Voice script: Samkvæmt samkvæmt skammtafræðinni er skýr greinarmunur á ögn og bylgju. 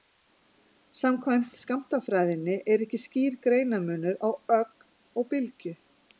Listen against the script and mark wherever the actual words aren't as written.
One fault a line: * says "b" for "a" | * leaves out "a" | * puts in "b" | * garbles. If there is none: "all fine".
* leaves out "samkvæmt"
* puts in "ekki"